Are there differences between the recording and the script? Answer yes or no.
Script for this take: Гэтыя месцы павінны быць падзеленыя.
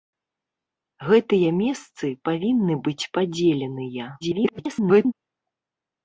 yes